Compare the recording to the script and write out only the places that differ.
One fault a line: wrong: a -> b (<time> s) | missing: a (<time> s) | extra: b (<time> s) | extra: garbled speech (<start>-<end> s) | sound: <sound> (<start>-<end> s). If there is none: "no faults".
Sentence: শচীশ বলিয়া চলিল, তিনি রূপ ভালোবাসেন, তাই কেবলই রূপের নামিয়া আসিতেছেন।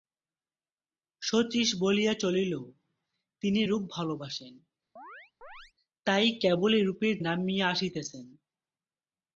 sound: chirp (5.0-5.7 s)